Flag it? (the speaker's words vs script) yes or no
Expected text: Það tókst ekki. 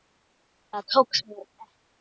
yes